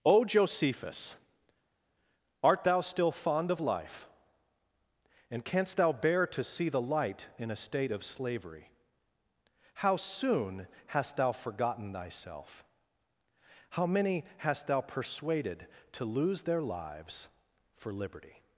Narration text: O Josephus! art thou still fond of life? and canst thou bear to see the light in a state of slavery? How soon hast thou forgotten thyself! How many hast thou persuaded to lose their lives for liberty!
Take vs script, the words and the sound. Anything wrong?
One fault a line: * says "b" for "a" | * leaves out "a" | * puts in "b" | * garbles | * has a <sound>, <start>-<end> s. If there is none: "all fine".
all fine